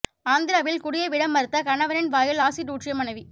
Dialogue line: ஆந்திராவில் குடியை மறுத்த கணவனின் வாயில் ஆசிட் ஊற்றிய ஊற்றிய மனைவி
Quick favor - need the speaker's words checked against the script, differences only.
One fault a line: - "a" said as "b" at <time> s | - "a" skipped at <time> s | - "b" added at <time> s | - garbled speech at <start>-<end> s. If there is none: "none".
- "விட" added at 1.1 s
- "ஊற்றிய" skipped at 2.9 s